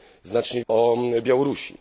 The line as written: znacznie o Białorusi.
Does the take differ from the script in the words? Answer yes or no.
no